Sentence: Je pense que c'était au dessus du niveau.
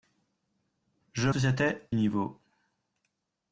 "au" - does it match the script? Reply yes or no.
no